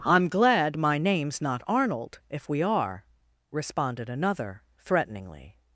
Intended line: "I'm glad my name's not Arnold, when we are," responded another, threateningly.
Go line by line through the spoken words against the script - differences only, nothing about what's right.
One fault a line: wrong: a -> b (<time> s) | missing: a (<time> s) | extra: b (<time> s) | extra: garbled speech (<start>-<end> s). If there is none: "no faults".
wrong: when -> if (2.3 s)